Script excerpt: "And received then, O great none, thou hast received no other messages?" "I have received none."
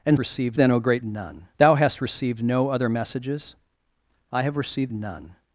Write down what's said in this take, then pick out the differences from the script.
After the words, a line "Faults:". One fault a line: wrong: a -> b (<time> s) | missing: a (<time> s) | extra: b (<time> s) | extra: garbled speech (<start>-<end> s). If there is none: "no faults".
"And received then, O great none, thou hast received no other messages?" "I have received none."
Faults:
no faults